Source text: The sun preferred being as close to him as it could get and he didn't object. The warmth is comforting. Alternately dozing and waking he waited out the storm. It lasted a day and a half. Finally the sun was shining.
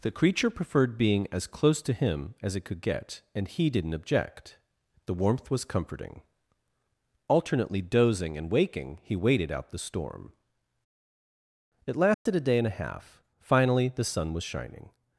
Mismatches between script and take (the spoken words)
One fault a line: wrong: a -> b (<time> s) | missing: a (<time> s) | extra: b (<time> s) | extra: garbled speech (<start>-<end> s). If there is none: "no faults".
wrong: sun -> creature (0.1 s)
wrong: is -> was (5.5 s)